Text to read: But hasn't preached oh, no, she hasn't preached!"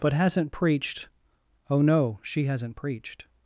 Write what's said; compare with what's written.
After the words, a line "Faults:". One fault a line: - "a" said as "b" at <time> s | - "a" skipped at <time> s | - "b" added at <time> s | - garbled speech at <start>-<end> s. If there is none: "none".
But hasn't preached oh, no, she hasn't preached!"
Faults:
none